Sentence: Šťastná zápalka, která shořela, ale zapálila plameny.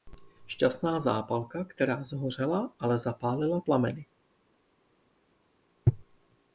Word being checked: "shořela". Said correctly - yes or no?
yes